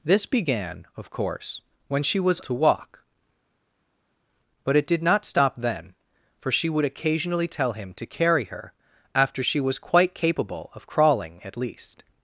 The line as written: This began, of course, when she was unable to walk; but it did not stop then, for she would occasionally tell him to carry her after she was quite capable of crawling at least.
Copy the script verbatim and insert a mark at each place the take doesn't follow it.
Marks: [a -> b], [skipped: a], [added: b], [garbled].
This began, of course, when she was [skipped: unable] to walk; but it did not stop then, for she would occasionally tell him to carry her after she was quite capable of crawling at least.